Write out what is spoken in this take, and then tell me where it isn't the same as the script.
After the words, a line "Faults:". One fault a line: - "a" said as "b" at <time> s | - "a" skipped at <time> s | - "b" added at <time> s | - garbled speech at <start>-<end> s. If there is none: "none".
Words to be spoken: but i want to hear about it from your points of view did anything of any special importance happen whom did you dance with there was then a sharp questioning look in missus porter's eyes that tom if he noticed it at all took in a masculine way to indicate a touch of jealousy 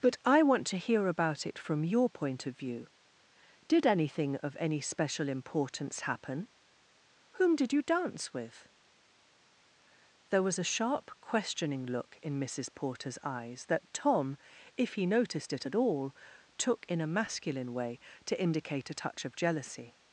but i want to hear about it from your point of view did anything of any special importance happen whom did you dance with there was a sharp questioning look in missus porter's eyes that tom if he noticed it at all took in a masculine way to indicate a touch of jealousy
Faults:
- "points" said as "point" at 2.1 s
- "then" skipped at 10.6 s